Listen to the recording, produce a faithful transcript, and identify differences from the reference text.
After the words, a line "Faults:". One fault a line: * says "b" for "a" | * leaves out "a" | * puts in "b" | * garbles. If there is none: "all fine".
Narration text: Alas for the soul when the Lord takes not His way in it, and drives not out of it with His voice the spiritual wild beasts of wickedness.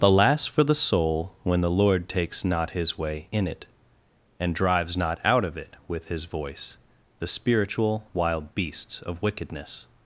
Alas for the soul when the Lord takes not His way in it, and drives not out of it with His voice the spiritual wild beasts of wickedness.
Faults:
all fine